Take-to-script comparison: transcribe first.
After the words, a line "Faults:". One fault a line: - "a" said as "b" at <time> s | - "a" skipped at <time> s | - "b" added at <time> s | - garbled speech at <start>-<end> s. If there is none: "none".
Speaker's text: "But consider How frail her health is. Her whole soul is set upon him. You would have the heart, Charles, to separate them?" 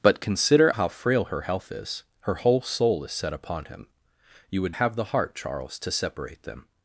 "But consider How frail her health is. Her whole soul is set upon him. You would have the heart, Charles, to separate them?"
Faults:
none